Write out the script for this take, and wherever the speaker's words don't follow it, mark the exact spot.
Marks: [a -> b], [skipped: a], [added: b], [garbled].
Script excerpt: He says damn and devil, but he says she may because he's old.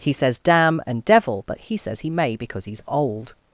He says damn and devil, but he says [she -> he] may because he's old.